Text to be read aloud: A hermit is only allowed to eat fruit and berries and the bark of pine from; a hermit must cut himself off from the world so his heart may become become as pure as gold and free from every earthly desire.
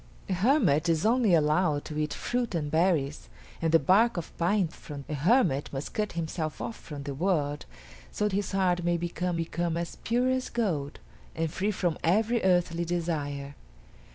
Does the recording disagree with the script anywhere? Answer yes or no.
no